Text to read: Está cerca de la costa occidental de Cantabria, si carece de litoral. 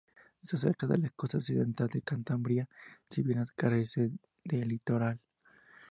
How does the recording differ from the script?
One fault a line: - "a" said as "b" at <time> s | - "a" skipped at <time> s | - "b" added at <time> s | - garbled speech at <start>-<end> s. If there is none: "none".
- "bien" added at 3.2 s